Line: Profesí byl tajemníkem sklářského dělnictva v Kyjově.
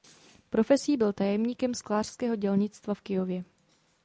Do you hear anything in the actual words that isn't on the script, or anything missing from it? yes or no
no